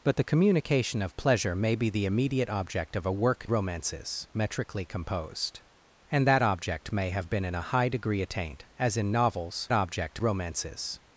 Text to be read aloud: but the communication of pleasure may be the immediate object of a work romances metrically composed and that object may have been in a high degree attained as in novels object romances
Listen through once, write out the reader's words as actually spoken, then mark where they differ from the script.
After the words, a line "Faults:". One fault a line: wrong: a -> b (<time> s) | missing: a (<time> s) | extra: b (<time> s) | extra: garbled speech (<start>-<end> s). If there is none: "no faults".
but the communication of pleasure may be the immediate object of a work romances metrically composed and that object may have been in a high degree attained as in novels object romances
Faults:
no faults